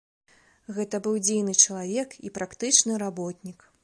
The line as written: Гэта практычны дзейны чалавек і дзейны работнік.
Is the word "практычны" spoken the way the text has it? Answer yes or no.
no